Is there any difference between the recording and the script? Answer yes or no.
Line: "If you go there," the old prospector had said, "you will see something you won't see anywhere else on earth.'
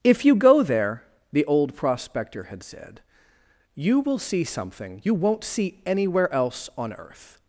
no